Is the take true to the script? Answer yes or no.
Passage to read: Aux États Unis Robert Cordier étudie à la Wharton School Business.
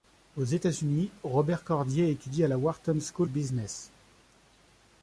yes